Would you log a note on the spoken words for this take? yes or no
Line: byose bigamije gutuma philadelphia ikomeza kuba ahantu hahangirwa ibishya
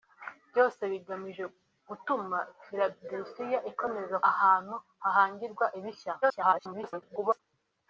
yes